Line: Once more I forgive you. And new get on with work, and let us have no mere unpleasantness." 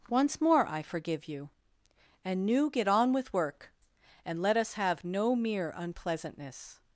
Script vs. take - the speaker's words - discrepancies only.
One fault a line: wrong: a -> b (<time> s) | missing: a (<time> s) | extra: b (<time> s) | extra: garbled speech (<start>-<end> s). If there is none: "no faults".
no faults